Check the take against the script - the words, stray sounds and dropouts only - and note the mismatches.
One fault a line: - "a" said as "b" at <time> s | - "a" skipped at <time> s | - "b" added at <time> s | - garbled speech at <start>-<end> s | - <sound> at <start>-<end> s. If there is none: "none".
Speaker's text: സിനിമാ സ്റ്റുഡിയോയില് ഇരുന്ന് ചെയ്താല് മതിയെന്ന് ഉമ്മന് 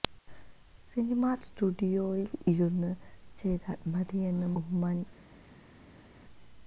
none